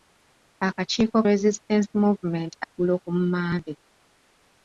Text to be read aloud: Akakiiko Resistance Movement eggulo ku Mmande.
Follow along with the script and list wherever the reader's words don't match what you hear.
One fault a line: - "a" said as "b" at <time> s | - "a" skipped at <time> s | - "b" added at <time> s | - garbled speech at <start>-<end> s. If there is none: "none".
none